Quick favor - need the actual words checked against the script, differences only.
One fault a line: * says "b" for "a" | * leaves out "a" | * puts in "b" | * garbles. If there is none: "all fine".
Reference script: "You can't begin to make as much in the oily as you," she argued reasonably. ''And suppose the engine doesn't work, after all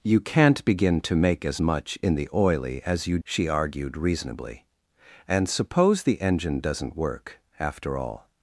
all fine